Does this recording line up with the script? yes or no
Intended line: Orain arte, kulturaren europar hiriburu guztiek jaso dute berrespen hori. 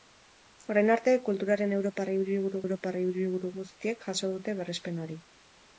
no